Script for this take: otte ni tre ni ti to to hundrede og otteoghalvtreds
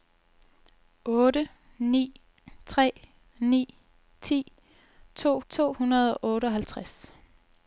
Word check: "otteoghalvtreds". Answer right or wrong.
right